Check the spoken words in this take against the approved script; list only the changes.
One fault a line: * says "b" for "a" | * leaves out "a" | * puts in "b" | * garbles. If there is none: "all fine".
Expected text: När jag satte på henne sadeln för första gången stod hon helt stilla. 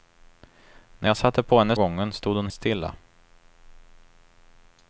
* leaves out "sadeln för första"
* leaves out "helt"